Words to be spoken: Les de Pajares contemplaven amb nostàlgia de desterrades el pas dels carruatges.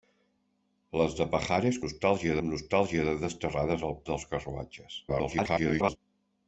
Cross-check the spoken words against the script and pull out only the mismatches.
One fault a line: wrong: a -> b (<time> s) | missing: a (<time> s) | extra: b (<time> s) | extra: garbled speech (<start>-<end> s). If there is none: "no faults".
wrong: contemplaven -> nostàlgia (1.9 s)
missing: pas (4.0 s)
extra: garbled speech (5.1-6.0 s)